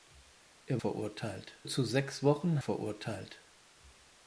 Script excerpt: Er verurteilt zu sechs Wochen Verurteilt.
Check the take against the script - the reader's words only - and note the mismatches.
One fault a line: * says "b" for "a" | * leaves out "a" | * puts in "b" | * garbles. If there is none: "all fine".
all fine